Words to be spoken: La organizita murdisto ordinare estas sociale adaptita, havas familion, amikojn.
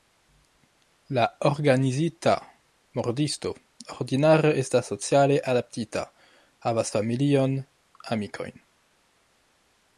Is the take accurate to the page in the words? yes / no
yes